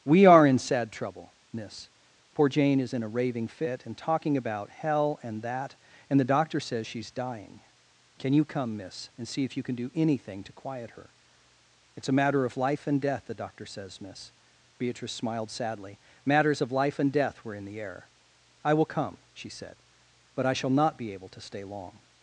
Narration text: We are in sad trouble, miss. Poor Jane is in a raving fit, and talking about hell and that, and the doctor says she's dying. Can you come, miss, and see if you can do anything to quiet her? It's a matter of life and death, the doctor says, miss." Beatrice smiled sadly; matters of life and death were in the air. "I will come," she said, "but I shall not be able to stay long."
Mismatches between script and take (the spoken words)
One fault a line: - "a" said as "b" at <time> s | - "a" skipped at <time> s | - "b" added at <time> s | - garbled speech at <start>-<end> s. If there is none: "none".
none